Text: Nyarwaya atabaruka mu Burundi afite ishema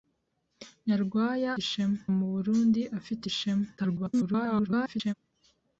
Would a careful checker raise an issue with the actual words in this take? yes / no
yes